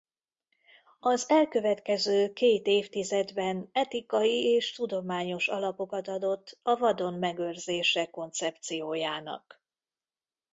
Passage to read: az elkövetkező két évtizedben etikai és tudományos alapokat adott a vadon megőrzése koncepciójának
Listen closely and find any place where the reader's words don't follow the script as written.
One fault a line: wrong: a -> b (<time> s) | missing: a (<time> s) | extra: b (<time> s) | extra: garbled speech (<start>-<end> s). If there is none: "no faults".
no faults